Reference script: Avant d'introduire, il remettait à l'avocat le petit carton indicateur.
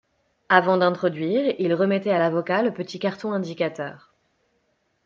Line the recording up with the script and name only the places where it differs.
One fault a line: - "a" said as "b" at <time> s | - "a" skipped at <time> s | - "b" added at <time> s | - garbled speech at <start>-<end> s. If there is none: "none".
none